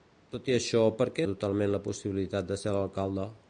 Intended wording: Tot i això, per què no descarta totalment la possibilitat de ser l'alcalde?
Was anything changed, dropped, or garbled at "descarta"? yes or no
yes